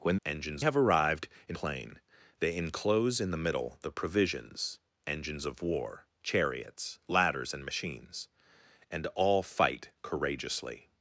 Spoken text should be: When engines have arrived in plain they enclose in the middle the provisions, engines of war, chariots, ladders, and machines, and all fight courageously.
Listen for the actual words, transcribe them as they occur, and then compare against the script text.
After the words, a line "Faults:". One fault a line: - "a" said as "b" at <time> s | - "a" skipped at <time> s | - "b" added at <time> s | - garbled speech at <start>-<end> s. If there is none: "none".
When engines have arrived in plain they enclose in the middle the provisions, engines of war, chariots, ladders, and machines, and all fight courageously.
Faults:
none